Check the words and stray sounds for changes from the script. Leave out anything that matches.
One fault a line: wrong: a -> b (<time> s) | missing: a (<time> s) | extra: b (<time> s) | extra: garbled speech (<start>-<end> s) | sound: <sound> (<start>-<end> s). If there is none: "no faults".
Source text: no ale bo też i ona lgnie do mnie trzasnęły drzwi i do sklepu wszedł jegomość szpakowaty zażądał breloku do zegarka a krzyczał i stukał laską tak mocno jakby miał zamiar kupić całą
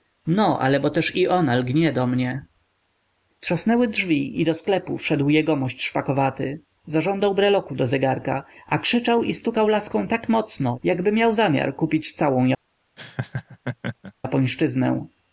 sound: laugh (13.0-14.1 s)